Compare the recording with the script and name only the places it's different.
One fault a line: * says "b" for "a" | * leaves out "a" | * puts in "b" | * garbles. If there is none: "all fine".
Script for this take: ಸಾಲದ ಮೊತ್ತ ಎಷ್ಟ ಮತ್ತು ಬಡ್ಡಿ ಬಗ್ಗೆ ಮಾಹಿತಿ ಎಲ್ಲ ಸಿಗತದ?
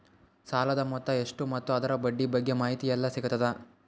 * puts in "ಅದರ"